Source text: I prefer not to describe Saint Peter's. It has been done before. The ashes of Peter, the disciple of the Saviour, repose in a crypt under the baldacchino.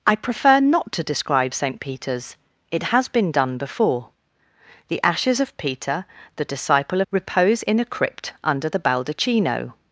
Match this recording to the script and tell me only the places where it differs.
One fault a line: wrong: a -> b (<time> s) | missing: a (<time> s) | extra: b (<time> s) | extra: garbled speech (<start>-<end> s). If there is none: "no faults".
missing: of the Saviour (7.0 s)